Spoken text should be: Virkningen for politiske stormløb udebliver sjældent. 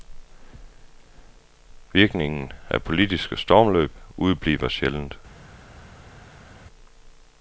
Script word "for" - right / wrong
wrong